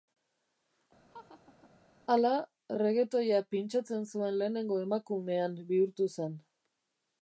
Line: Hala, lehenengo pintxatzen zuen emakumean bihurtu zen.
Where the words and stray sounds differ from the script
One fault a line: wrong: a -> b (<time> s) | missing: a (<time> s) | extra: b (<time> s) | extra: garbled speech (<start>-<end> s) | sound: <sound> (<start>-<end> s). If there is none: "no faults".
sound: laugh (1.1-1.7 s)
wrong: lehenengo -> reggaetoia (2.8 s)
extra: lehenengo (4.4 s)